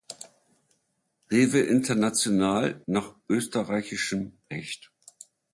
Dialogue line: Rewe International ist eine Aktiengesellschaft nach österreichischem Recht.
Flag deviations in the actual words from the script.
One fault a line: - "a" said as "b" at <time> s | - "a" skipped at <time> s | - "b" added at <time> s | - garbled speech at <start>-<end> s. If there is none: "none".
- "ist eine Aktiengesellschaft" skipped at 2.8 s